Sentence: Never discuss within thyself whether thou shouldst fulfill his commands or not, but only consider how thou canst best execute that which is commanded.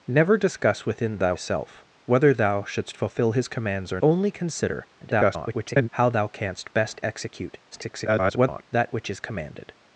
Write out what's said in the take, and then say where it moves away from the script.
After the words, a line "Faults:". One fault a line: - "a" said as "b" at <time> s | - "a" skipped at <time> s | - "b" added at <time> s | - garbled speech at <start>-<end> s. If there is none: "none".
Never discuss within thyself whether thou shouldst fulfill his commands or only consider [garbled] how thou canst best execute [garbled] that which is commanded.
Faults:
- "not but" skipped at 4.0 s
- garbled speech at 5.0-5.9 s
- garbled speech at 7.7-8.6 s